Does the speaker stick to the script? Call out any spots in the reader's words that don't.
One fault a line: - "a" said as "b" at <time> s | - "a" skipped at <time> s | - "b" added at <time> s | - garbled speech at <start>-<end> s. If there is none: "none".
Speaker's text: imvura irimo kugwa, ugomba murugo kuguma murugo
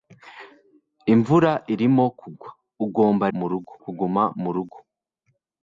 none